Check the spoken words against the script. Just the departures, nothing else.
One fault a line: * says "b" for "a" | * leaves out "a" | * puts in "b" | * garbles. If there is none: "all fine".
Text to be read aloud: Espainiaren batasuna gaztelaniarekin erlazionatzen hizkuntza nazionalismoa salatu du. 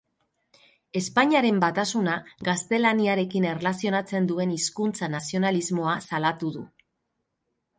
* puts in "duen"